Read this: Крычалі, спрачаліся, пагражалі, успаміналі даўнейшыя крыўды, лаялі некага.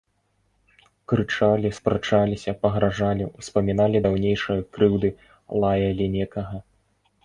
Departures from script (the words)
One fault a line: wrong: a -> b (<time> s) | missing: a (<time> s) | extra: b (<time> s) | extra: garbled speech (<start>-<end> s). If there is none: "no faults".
no faults